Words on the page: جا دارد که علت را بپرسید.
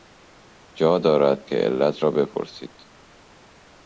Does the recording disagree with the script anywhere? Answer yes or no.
no